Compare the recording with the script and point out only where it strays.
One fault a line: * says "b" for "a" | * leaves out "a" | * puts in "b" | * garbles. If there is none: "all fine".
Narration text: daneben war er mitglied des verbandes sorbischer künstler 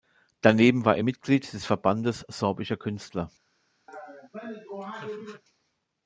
all fine